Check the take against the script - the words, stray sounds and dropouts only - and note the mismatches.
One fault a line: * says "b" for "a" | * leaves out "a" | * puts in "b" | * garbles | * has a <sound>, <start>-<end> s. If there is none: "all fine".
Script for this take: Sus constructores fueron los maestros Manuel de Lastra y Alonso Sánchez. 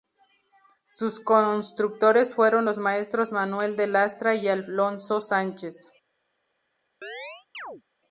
* has a chirp, 7.0-7.8 s